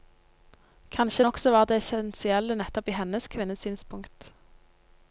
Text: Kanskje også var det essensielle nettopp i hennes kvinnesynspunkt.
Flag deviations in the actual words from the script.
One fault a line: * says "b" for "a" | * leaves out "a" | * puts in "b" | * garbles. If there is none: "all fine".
all fine